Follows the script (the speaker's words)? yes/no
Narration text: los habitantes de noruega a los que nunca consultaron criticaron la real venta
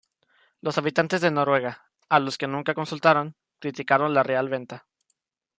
yes